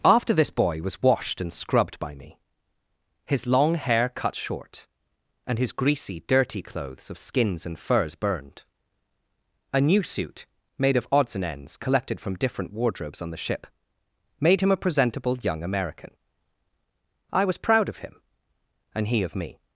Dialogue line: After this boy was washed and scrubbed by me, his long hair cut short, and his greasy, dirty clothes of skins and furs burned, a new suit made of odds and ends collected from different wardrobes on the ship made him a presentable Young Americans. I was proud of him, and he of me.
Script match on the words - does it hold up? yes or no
no